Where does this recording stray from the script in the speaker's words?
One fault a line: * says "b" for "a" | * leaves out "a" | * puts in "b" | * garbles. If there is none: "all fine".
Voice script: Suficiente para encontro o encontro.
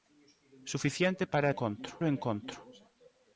all fine